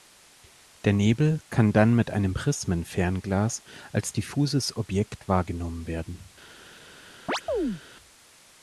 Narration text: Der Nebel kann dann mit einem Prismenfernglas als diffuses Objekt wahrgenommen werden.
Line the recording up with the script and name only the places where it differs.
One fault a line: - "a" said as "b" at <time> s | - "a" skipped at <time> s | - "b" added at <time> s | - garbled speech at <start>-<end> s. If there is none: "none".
none